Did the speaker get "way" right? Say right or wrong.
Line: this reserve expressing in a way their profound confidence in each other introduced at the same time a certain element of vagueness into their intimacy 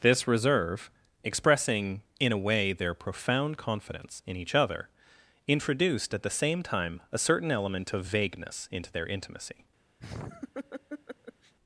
right